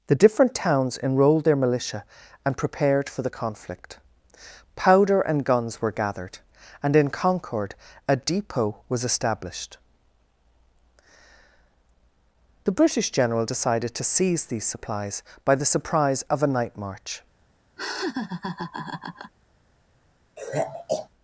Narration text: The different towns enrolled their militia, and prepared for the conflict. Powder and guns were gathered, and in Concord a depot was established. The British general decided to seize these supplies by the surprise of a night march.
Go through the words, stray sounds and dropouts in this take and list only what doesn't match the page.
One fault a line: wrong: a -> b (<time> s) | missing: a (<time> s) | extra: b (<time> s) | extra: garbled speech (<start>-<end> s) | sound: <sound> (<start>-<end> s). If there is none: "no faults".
sound: laugh (17.8-19.3 s)
sound: sigh (20.4-21.1 s)